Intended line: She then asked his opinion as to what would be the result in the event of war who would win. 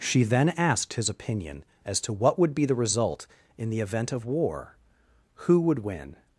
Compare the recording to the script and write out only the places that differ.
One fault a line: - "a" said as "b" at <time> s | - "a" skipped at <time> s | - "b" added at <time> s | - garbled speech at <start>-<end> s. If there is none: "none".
none